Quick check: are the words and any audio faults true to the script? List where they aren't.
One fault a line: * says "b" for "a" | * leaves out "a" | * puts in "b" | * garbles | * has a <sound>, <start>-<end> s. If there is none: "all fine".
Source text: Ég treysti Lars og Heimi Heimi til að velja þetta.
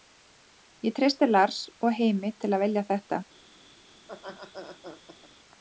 * leaves out "Heimi"
* has a laugh, 4.0-5.3 s